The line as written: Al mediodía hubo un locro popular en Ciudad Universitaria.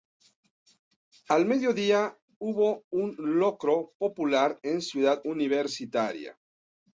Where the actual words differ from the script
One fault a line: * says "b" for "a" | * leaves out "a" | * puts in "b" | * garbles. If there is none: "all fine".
all fine